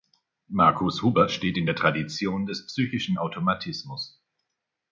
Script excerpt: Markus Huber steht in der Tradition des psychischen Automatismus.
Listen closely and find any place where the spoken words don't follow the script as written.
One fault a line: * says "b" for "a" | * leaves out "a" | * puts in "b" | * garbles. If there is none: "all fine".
all fine